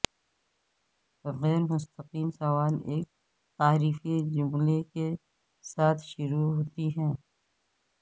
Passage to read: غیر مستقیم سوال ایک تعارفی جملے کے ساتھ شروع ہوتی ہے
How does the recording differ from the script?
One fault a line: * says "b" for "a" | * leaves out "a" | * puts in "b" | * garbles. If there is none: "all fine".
all fine